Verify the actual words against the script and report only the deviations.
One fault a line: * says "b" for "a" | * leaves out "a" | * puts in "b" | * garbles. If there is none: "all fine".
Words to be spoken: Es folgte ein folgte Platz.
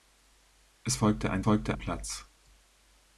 all fine